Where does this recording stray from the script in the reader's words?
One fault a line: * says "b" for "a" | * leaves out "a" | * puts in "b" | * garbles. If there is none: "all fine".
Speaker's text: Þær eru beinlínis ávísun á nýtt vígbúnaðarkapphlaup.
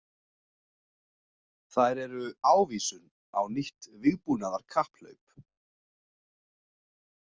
* leaves out "beinlínis"